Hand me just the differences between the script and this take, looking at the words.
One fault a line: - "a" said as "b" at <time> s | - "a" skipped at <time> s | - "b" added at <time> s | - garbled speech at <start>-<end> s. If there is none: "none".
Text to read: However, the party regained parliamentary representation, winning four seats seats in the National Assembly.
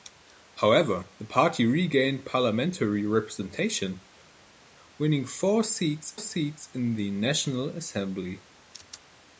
none